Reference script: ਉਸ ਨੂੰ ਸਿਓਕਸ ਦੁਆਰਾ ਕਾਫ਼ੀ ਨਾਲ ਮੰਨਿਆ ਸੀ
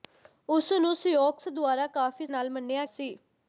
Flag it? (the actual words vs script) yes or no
no